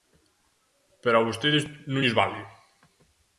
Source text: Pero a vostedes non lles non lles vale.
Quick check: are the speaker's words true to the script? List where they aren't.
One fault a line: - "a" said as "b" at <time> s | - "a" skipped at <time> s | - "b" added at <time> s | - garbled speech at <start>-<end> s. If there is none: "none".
- "non lles" skipped at 2.2 s